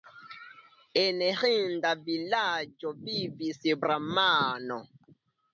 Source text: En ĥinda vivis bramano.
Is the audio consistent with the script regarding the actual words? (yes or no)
no